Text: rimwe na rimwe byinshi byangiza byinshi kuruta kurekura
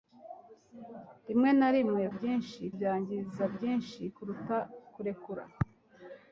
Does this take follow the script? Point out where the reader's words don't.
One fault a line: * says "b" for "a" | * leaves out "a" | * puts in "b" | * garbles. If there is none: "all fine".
all fine